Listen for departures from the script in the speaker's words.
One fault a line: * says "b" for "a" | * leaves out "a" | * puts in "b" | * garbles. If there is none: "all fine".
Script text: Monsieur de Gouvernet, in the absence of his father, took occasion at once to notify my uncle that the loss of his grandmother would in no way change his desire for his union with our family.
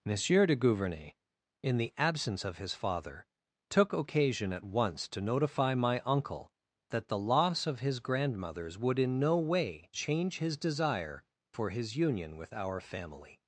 * says "grandmothers" for "grandmother"